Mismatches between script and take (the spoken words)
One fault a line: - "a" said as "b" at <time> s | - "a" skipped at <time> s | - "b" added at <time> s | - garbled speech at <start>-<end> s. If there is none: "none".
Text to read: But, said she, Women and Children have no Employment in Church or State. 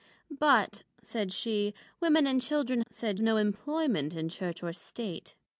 - "have" said as "said" at 2.9 s